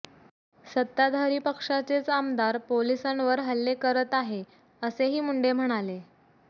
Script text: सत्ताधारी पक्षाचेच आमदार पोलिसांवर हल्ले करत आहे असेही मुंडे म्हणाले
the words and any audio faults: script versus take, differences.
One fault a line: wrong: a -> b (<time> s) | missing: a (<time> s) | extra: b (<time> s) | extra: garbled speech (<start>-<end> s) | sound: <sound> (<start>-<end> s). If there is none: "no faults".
no faults